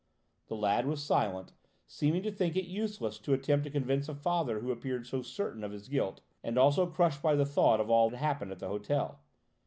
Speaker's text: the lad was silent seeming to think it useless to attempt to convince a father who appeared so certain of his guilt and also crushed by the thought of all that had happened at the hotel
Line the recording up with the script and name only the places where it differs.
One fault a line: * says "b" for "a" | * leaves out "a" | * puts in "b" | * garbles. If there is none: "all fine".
* leaves out "that"